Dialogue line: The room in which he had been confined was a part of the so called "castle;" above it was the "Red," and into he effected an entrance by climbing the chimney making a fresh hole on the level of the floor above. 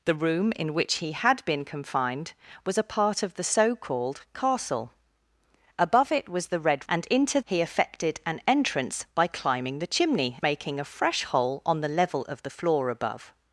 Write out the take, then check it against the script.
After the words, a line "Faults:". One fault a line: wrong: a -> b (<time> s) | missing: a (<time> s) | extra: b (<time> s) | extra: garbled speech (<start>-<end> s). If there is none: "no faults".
The room in which he had been confined was a part of the so called "castle;" above it was the "Red," and into he effected an entrance by climbing the chimney making a fresh hole on the level of the floor above.
Faults:
no faults